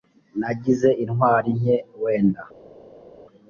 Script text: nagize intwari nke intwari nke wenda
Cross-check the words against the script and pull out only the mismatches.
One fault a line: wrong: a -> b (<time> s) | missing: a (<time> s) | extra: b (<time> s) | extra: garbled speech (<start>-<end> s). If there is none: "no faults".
missing: intwari nke (1.8 s)